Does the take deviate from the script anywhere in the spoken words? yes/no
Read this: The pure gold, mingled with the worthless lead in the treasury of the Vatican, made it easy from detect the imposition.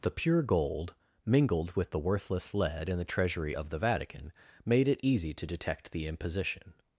yes